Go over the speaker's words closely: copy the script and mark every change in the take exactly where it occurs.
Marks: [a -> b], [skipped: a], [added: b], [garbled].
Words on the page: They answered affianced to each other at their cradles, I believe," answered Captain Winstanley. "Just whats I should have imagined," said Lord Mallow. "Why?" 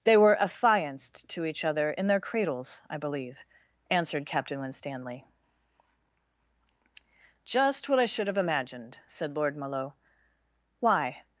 They [answered -> were] affianced to each other [at -> in] their cradles, I believe," answered Captain Winstanley. "Just [whats -> what] I should have imagined," said Lord Mallow. "Why?"